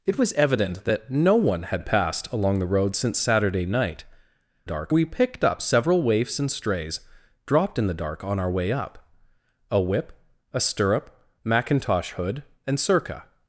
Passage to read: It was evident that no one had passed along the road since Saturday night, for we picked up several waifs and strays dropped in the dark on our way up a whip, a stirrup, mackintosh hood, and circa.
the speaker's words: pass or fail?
fail